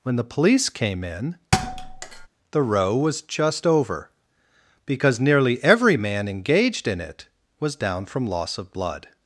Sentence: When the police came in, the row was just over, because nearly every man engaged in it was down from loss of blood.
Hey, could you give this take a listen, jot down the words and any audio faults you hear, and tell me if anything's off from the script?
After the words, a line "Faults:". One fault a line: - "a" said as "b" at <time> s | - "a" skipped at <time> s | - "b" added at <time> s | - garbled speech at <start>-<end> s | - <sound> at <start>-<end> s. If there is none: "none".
When the police came in, the row was just over, because nearly every man engaged in it was down from loss of blood.
Faults:
- thud at 1.5-2.3 s